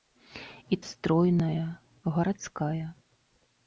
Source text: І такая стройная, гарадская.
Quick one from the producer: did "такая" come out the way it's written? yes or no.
no